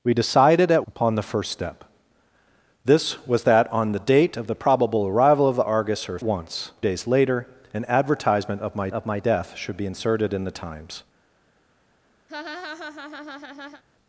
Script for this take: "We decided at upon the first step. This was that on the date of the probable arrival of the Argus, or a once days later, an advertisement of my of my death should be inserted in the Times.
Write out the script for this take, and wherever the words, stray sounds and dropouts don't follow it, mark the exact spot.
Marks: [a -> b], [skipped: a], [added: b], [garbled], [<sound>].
"We decided at upon the first step. This was that on the date of the probable arrival of the Argus, or a once days later, an advertisement of my of my death should be inserted in the Times. [laugh]